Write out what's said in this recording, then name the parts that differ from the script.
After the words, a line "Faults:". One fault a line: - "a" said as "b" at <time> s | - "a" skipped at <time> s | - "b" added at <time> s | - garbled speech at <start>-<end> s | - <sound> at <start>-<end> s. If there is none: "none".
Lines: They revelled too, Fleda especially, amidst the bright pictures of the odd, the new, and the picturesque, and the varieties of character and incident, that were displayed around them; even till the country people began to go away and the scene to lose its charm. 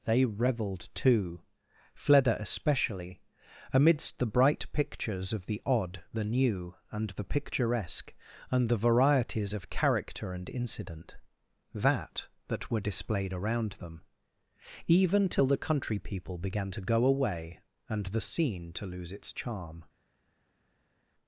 They revelled too, Fleda especially, amidst the bright pictures of the odd, the new, and the picturesque, and the varieties of character and incident, that that were displayed around them; even till the country people began to go away and the scene to lose its charm.
Faults:
- "that" added at 12.5 s